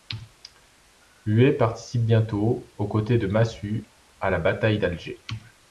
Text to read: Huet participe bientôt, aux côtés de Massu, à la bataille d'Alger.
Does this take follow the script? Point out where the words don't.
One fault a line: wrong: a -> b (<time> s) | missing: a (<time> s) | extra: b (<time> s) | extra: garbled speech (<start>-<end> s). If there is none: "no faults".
no faults